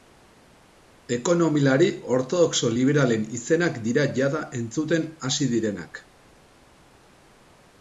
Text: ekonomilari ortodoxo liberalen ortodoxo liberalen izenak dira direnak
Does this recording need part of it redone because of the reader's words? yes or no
yes